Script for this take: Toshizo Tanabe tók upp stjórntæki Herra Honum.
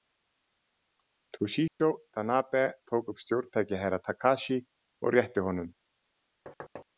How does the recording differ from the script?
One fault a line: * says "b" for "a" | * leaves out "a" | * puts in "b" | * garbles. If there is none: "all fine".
* puts in "Takashi og rétti"